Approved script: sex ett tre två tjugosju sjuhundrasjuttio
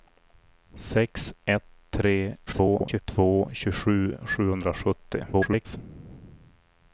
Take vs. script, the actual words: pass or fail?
fail